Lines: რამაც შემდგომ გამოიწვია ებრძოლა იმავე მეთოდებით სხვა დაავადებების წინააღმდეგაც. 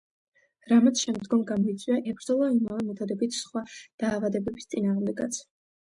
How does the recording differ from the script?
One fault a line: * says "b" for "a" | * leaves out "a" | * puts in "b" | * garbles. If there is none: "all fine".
all fine